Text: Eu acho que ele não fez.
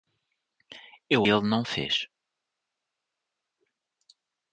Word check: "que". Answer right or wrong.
wrong